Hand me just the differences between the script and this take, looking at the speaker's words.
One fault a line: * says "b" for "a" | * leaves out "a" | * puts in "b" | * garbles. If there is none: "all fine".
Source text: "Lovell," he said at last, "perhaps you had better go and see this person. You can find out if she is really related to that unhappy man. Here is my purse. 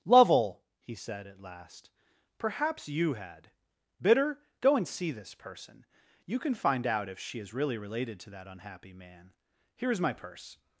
* says "bitter" for "better"